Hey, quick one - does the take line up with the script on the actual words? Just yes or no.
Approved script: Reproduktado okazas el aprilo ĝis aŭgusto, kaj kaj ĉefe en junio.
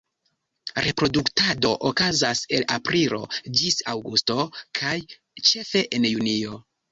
no